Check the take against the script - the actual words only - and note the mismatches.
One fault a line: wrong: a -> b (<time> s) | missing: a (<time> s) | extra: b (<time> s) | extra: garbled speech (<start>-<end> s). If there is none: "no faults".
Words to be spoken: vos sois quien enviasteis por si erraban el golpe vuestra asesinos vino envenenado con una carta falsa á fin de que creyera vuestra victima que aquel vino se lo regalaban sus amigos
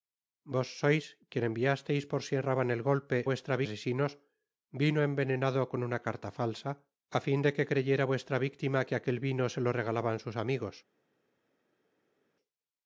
no faults